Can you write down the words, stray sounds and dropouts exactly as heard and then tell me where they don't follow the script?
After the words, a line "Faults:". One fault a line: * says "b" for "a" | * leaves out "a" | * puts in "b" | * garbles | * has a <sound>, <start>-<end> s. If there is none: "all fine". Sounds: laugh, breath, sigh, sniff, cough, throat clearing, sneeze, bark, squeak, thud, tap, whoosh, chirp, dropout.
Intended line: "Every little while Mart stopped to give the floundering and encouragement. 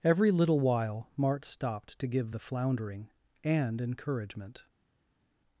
"Every little while Mart stopped to give the floundering and encouragement.
Faults:
all fine